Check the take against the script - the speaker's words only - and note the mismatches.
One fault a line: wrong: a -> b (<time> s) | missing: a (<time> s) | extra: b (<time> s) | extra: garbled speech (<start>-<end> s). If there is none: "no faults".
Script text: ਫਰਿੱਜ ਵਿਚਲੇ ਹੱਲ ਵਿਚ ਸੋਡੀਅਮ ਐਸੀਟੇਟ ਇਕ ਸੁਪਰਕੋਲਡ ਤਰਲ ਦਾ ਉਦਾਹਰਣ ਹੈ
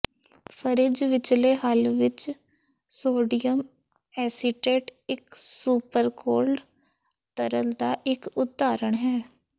extra: ਇਕ (8.1 s)